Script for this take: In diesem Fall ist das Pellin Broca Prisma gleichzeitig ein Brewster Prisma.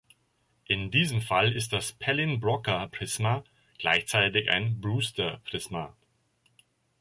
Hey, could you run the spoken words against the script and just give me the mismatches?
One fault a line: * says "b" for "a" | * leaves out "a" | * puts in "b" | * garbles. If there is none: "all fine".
all fine